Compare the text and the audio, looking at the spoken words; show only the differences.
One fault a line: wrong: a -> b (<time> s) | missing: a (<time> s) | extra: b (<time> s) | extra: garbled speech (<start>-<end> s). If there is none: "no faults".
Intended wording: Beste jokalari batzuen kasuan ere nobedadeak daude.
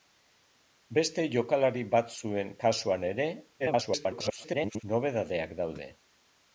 extra: garbled speech (3.6-4.8 s)